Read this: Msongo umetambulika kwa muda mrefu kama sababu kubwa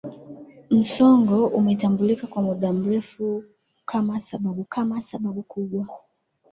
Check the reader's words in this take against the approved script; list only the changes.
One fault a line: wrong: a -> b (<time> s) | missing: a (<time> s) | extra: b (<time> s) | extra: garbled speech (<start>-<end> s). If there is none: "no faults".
extra: kama sababu (4.7 s)